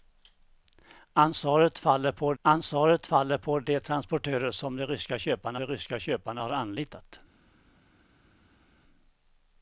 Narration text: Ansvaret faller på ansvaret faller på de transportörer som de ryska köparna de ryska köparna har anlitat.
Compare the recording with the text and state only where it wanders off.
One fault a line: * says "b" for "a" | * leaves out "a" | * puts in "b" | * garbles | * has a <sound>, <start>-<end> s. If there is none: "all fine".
all fine